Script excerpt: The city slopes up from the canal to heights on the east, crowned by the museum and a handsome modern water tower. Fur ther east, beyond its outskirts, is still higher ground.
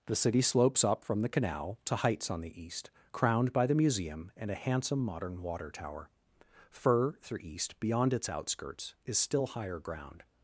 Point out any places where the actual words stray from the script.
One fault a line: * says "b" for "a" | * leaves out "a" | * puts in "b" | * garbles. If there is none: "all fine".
* says "through" for "ther"